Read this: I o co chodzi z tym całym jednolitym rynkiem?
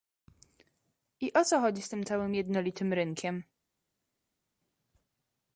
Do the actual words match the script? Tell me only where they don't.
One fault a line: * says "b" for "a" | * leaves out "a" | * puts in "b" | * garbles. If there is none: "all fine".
all fine